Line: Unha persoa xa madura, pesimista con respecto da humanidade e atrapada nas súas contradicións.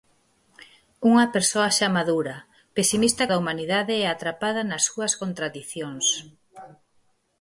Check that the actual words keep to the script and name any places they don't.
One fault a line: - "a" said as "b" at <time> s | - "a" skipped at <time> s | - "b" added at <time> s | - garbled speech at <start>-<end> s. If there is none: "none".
- "con respecto" skipped at 3.2 s